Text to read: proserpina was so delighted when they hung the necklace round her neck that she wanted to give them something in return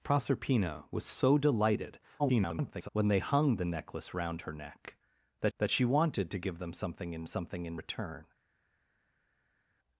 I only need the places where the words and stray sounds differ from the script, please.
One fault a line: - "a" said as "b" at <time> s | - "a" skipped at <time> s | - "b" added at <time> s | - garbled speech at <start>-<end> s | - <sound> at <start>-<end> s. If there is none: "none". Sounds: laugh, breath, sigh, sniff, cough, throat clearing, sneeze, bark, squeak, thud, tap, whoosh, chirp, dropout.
- garbled speech at 2.2-2.9 s
- "that" added at 5.6 s
- "something in" added at 7.3 s